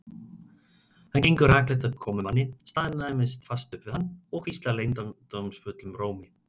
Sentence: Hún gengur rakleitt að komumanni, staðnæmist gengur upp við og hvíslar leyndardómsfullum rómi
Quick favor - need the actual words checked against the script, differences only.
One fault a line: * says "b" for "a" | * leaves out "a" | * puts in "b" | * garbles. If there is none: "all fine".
* says "Hann" for "Hún"
* says "fast" for "gengur"
* puts in "hann"